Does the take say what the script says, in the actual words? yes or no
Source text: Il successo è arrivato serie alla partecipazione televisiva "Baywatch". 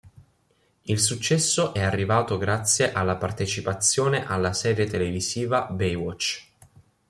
no